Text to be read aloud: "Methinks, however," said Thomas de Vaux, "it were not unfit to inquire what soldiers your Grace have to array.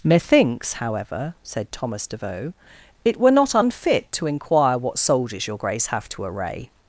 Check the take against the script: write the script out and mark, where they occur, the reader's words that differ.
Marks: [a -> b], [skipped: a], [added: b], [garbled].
"Methinks, however," said Thomas de Vaux, "it were not unfit to inquire what soldiers your Grace have to array.